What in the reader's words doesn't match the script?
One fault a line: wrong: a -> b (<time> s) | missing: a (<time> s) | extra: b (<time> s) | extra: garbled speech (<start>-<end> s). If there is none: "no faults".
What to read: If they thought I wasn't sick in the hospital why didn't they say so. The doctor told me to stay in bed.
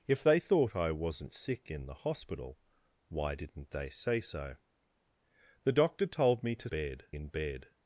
wrong: stay -> bed (6.7 s)